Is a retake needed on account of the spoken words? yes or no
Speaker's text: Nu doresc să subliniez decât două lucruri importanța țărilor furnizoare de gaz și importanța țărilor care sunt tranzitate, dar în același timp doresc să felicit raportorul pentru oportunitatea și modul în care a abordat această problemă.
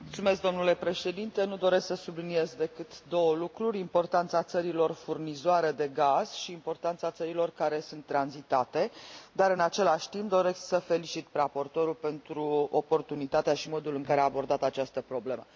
no